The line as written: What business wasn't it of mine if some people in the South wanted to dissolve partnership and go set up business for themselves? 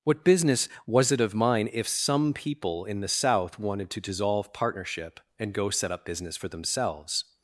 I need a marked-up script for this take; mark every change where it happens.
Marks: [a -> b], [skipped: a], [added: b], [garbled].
What business [wasn't -> was] it of mine if some people in the South wanted to dissolve partnership and go set up business for themselves?